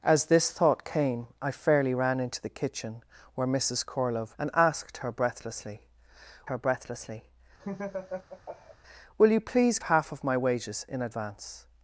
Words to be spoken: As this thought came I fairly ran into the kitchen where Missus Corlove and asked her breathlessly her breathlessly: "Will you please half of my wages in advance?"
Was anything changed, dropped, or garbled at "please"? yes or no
no